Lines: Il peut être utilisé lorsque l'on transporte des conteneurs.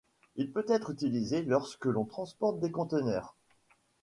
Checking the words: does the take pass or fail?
pass